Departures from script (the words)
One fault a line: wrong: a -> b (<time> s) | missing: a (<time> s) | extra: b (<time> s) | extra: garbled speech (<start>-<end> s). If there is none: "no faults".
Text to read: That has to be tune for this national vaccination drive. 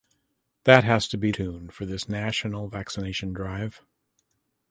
no faults